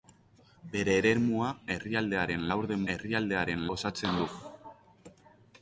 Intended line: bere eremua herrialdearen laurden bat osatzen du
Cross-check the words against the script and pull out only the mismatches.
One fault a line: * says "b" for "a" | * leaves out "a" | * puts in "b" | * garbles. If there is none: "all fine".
* says "herrialdearen" for "bat"